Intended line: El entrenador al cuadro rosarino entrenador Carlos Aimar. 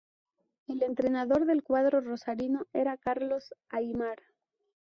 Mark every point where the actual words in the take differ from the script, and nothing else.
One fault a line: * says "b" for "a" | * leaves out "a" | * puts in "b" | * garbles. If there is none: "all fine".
* says "del" for "al"
* says "era" for "entrenador"